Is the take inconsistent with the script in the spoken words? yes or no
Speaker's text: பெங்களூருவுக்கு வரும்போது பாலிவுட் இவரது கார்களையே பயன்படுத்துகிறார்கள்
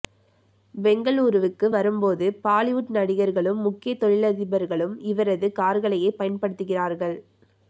yes